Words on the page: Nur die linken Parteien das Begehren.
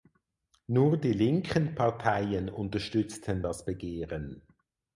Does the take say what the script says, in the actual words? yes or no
no